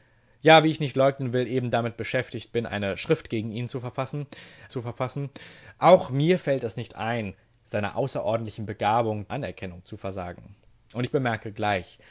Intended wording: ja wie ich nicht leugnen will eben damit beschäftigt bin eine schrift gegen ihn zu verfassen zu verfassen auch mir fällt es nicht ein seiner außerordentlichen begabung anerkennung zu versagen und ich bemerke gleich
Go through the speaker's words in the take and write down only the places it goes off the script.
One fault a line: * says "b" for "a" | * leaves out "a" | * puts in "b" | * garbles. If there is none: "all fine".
all fine